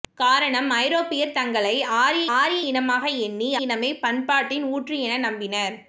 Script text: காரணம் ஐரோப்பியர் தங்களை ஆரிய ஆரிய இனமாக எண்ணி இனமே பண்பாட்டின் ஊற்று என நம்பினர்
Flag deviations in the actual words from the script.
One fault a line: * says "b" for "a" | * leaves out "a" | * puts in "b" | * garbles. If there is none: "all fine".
all fine